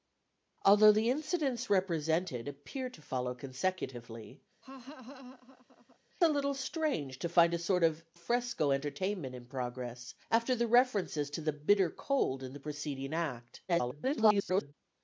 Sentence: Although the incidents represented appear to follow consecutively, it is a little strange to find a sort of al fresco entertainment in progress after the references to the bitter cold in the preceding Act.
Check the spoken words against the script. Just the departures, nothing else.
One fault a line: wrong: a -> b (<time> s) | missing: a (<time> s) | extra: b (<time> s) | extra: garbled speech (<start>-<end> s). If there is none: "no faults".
missing: it is (4.4 s)
missing: al (8.0 s)
extra: garbled speech (13.7-14.7 s)